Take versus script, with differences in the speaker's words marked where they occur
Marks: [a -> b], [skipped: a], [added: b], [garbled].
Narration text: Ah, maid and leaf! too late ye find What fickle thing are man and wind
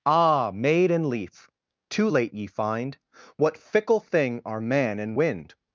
Ah, maid and leaf! too late ye find What fickle thing are man and wind